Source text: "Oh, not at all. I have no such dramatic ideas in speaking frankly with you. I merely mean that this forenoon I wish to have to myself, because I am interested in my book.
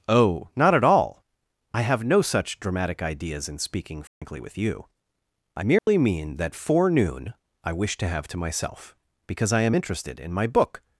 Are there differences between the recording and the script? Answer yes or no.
yes